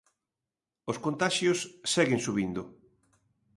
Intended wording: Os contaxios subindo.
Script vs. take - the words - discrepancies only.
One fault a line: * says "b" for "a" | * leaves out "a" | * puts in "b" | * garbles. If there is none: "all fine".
* puts in "seguen"